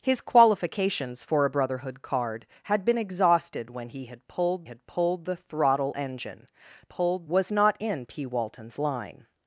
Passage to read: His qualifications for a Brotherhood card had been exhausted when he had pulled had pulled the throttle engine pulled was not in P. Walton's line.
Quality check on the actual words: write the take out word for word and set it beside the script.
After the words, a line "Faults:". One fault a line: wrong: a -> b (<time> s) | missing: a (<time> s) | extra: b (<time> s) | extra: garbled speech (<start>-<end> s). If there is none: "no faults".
His qualifications for a Brotherhood card had been exhausted when he had pulled had pulled the throttle engine pulled was not in P. Walton's line.
Faults:
no faults